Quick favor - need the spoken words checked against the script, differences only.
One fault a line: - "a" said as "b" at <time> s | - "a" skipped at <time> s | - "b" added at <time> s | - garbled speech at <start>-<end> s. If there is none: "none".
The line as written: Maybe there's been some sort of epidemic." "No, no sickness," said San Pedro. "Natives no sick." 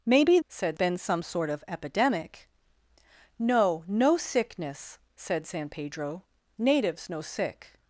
- "there's" said as "said" at 0.5 s